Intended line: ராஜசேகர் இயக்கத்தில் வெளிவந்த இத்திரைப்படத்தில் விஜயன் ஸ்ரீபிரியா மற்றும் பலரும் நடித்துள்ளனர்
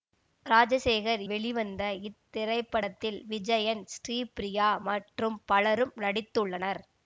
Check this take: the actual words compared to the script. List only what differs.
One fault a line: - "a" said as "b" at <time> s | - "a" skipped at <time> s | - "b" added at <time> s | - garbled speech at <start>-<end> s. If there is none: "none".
- "இயக்கத்தில்" skipped at 1.2 s